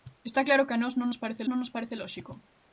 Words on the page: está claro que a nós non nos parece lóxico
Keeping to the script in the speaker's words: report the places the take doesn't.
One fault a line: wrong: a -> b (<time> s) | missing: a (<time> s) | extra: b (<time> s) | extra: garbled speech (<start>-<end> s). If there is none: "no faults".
extra: non nos parece (1.5 s)